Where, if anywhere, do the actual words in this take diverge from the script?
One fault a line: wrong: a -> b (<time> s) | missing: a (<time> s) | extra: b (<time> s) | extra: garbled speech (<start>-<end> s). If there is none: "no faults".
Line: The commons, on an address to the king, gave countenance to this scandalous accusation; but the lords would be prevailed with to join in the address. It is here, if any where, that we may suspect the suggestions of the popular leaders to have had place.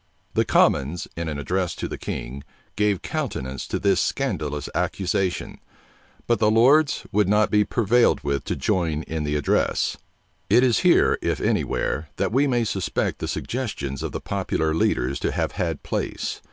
wrong: on -> in (1.1 s)
extra: not (7.3 s)